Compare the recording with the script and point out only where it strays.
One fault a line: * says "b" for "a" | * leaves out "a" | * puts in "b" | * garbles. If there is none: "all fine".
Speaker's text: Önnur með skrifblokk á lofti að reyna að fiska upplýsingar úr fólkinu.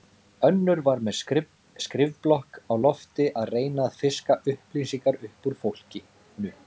* puts in "var"
* puts in "upp"